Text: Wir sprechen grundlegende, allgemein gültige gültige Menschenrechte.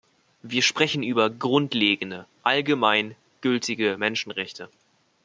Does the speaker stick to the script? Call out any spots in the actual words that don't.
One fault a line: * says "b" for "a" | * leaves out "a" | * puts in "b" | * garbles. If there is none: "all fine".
* puts in "über"
* leaves out "gültige"